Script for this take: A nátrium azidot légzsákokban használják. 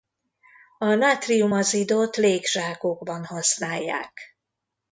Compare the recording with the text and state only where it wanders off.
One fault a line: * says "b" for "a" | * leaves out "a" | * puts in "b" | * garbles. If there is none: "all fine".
all fine